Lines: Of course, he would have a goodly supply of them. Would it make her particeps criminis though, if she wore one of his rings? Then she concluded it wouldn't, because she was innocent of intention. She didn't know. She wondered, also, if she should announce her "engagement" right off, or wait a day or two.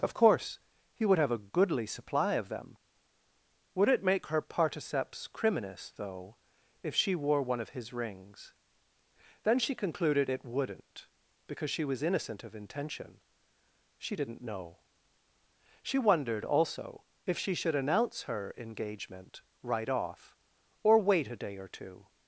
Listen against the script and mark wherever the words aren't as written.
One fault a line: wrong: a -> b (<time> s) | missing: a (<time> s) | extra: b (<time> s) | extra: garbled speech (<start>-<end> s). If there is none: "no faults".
no faults